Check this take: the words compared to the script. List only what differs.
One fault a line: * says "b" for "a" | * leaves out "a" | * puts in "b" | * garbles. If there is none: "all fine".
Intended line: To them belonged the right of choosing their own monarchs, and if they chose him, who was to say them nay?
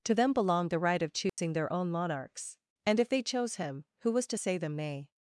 all fine